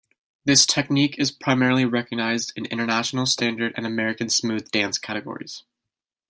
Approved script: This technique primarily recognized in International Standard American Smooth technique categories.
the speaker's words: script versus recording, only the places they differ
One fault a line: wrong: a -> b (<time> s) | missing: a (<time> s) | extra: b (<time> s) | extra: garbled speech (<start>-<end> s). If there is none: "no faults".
extra: is (1.2 s)
extra: and (3.7 s)
wrong: technique -> dance (4.7 s)